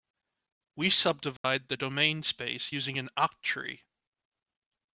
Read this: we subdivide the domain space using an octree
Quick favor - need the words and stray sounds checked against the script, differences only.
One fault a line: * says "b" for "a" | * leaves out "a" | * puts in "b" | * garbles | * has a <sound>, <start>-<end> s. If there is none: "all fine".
* has a dropout, 1.4-1.4 s